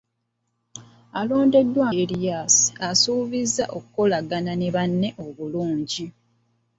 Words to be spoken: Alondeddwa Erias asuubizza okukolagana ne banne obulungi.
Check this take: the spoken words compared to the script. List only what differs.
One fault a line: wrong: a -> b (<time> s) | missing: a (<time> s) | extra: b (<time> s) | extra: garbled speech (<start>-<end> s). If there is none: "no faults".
no faults